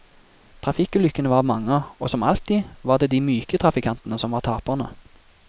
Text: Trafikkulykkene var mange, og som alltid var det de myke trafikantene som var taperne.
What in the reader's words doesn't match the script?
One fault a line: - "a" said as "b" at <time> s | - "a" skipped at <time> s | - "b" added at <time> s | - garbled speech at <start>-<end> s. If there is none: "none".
none